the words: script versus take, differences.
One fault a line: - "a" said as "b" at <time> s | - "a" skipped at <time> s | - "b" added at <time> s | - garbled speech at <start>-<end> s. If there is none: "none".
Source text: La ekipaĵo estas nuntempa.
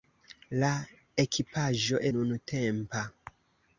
- "estas" skipped at 2.0 s